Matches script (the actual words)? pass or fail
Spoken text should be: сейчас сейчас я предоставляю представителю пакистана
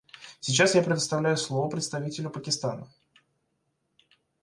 fail